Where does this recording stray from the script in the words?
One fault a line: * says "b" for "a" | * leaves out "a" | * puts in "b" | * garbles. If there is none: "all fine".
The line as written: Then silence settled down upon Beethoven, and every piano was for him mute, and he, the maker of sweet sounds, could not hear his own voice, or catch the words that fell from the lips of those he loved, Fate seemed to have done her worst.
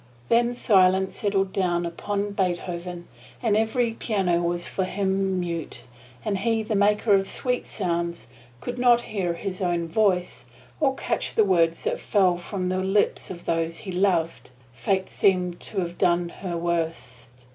all fine